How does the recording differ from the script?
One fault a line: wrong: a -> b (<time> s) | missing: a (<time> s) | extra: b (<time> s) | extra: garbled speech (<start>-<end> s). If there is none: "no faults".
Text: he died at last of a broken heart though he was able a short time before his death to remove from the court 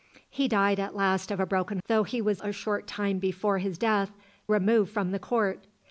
missing: heart (1.8 s)
missing: able (2.4 s)
missing: to (4.1 s)